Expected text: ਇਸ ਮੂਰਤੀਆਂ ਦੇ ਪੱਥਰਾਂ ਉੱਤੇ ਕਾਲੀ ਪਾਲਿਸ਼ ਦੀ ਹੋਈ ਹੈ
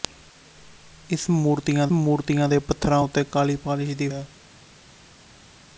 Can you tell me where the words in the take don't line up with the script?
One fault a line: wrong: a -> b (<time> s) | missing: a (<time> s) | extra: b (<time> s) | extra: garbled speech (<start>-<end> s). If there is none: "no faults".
extra: ਮੂਰਤੀਆਂ (1.9 s)
missing: ਹੋਈ (4.1 s)